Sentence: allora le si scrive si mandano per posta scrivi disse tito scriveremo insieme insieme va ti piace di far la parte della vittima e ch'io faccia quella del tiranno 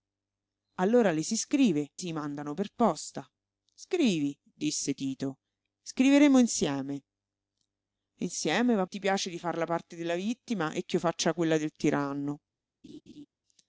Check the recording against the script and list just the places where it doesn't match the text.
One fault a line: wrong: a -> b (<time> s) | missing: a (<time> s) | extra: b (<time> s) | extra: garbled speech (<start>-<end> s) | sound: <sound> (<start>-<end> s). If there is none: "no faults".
sound: laugh (12.8-13.3 s)